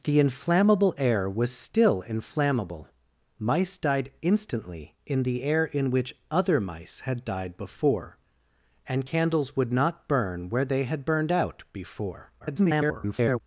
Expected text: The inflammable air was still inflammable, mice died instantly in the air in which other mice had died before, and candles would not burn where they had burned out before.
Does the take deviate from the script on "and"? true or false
false